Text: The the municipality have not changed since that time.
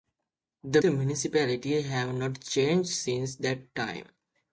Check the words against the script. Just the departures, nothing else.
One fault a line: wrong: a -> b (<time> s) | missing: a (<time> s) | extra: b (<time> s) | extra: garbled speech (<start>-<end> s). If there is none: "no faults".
no faults